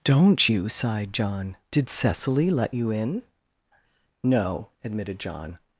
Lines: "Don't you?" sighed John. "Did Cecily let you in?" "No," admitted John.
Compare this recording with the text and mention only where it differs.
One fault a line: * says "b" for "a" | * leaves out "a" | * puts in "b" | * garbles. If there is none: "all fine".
all fine